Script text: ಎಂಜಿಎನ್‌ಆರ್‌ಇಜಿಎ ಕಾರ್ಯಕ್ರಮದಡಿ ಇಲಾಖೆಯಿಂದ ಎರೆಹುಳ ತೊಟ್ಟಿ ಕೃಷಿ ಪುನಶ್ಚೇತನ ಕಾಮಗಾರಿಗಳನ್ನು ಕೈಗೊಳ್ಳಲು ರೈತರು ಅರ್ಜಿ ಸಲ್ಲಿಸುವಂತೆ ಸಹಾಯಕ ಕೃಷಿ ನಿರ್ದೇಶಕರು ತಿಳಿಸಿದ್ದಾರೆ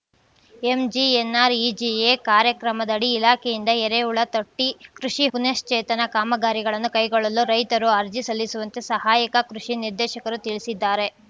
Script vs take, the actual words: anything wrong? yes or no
no